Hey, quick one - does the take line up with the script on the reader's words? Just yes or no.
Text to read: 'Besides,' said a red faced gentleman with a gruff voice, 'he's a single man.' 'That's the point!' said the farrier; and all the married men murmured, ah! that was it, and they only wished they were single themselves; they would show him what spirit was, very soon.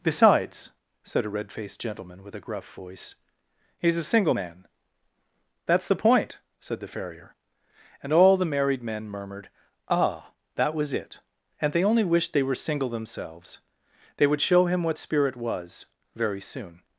yes